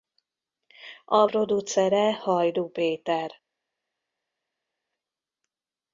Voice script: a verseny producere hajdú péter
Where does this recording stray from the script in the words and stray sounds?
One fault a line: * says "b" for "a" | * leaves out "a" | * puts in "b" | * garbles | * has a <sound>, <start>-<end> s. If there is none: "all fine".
* leaves out "verseny"